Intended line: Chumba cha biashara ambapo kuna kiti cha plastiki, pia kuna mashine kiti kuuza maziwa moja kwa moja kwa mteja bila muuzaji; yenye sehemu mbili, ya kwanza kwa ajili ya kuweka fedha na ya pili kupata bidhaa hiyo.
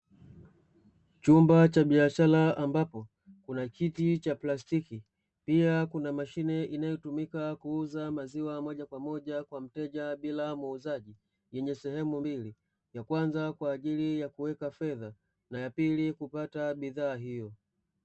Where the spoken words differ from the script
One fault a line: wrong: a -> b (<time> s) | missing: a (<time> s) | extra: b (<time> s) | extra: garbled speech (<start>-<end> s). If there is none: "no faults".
wrong: kiti -> inayotumika (6.6 s)